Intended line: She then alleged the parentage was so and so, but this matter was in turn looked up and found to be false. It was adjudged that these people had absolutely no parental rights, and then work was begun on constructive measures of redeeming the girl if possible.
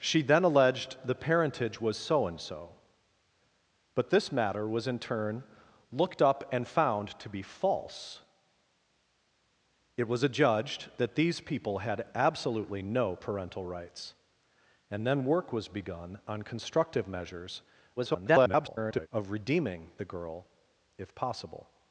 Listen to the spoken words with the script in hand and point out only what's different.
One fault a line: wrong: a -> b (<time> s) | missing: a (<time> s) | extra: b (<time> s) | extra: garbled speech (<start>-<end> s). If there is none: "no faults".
extra: garbled speech (18.0-19.1 s)